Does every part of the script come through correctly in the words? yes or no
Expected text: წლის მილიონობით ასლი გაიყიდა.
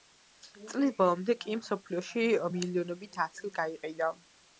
no